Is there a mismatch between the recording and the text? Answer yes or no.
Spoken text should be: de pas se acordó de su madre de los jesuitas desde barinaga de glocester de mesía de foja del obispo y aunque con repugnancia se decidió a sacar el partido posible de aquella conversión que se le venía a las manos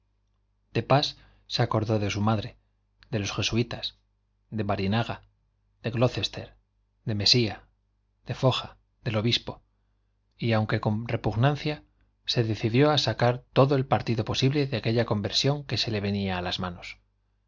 yes